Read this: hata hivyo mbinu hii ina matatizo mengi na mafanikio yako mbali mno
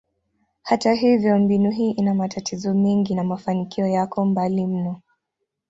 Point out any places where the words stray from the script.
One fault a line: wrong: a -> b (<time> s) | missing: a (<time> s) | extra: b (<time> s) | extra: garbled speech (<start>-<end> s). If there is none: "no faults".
no faults